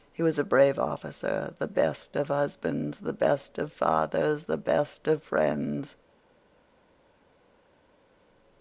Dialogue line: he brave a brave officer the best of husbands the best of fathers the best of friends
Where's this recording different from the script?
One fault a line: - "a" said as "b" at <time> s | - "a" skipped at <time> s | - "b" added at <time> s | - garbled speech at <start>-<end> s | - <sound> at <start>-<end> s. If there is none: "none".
- "brave" said as "was" at 0.2 s